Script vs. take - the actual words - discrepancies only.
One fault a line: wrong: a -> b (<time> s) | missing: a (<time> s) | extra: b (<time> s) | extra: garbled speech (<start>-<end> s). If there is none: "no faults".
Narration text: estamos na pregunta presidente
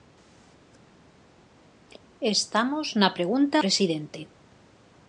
no faults